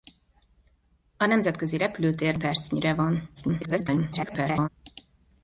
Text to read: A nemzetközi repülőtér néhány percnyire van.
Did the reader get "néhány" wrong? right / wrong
wrong